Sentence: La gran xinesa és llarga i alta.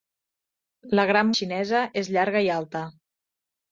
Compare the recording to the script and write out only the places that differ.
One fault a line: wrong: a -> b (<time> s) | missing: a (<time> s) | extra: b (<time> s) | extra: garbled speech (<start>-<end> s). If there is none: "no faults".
no faults